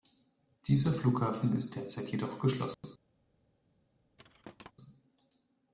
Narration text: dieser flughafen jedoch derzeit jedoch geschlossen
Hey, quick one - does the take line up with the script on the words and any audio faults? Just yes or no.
no